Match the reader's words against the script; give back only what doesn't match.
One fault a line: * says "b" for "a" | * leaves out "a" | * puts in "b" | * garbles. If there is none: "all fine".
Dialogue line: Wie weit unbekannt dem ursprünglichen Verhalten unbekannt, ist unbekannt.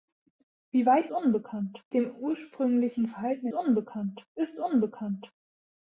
all fine